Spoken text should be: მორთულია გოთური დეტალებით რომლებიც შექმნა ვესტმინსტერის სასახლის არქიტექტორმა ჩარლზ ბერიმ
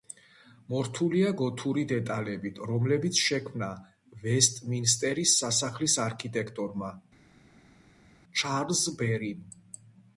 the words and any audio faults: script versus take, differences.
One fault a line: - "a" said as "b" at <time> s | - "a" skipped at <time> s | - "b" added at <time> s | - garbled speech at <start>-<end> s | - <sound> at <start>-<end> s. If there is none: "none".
none